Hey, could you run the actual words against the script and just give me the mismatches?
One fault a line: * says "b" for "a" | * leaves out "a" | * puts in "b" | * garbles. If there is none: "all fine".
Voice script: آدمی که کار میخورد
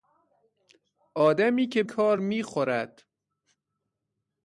all fine